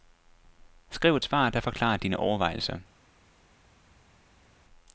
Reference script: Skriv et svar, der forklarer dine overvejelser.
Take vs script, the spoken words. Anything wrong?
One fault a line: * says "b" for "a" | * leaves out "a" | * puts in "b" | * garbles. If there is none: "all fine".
all fine